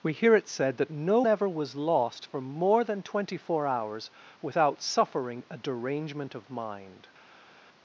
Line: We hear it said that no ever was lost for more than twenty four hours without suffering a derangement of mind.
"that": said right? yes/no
yes